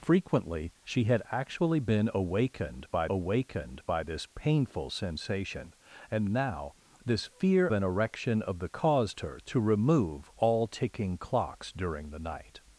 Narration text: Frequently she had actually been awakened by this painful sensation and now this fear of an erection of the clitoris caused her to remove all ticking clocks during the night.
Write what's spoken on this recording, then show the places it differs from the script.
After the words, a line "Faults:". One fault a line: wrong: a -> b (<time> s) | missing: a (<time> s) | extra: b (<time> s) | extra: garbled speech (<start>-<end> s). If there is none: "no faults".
Frequently she had actually been awakened by awakened by this painful sensation and now this fear an erection of the caused her to remove all ticking clocks during the night.
Faults:
extra: awakened by (3.1 s)
missing: of (7.7 s)
missing: clitoris (8.7 s)